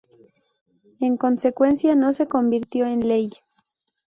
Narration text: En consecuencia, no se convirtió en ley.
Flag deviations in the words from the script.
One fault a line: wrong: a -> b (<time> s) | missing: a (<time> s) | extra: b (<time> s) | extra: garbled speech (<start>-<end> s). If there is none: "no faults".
no faults